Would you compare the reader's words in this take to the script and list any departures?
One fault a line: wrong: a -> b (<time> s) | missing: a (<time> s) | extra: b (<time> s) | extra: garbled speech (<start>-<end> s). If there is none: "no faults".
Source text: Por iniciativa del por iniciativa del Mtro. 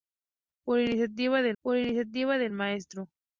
no faults